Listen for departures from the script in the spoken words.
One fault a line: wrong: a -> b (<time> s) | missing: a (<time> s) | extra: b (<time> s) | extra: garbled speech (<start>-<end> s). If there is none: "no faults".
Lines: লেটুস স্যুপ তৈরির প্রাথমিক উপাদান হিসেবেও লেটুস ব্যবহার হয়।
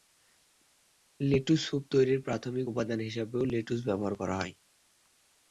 extra: করা (4.2 s)